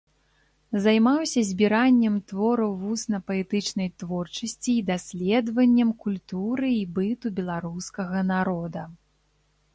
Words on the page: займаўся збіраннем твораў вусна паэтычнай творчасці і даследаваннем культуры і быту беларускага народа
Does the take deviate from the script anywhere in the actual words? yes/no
no